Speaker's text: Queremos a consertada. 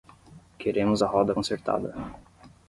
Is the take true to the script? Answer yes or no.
no